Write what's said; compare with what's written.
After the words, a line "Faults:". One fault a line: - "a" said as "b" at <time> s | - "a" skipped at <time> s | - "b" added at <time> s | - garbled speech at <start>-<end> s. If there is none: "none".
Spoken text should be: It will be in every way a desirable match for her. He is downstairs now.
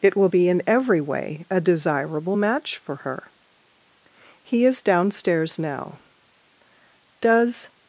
It will be in every way a desirable match for her. He is downstairs now. 'Does
Faults:
- "Does" added at 7.2 s